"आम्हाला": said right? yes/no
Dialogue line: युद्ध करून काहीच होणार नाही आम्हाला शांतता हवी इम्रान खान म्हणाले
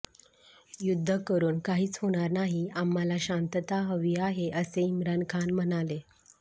yes